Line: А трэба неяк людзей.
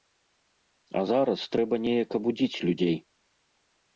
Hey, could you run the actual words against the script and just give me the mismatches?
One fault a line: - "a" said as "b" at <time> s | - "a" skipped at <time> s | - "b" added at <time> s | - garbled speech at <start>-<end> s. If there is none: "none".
- "зараз" added at 1.1 s
- "абудзіць" added at 2.2 s